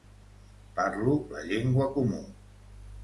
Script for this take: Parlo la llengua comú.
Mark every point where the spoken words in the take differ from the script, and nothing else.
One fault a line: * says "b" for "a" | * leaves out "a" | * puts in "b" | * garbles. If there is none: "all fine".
all fine